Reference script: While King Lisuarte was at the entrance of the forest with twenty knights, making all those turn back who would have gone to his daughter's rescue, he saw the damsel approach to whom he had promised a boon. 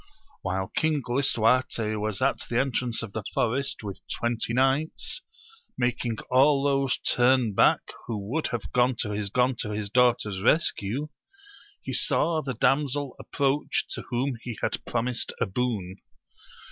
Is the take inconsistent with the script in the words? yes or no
yes